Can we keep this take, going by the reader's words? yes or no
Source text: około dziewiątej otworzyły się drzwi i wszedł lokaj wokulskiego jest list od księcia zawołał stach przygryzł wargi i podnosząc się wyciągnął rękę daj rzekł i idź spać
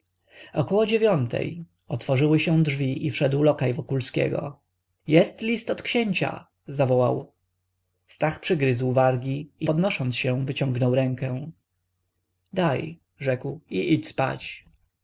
yes